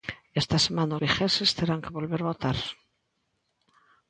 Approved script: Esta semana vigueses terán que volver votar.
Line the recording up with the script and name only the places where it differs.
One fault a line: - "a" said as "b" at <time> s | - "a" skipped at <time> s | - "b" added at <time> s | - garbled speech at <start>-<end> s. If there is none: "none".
none